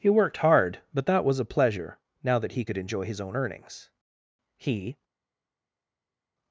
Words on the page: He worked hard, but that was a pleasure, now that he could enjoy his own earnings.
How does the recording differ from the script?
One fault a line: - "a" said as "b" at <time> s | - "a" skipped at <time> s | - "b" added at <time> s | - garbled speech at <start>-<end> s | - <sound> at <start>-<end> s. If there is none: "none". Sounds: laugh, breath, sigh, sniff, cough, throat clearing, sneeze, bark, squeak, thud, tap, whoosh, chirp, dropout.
- "He" added at 4.6 s